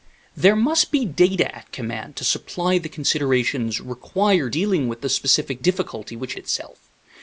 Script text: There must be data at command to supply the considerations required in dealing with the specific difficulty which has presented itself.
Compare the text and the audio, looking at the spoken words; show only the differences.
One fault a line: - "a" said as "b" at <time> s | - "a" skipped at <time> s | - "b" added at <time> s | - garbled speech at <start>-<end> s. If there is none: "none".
- "in" skipped at 4.5 s
- "has presented" skipped at 6.3 s